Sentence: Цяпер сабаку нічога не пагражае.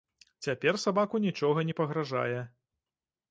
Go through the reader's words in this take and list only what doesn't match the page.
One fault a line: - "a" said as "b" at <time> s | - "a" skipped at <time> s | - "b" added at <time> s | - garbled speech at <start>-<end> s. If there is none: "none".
none